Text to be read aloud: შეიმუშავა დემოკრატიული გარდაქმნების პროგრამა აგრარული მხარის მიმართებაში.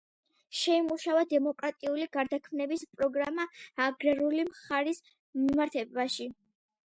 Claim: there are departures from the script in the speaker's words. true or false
false